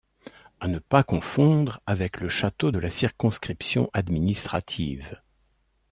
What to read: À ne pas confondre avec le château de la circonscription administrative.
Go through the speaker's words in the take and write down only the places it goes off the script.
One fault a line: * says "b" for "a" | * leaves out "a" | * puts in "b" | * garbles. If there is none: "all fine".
all fine